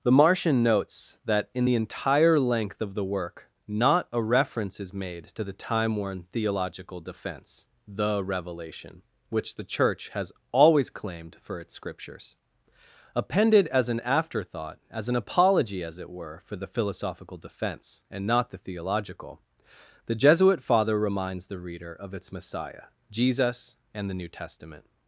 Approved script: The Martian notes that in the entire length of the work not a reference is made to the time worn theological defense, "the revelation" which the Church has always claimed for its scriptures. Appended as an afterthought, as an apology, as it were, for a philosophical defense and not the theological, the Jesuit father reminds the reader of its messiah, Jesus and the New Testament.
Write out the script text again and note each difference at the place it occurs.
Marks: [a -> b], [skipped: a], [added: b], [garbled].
The Martian notes that in the entire length of the work not a reference is made to the time worn theological defense, "the revelation" which the Church has always claimed for its scriptures. Appended as an afterthought, as an apology, as it were, for [a -> the] philosophical defense and not the theological, the Jesuit father reminds the reader of its messiah, Jesus and the New Testament.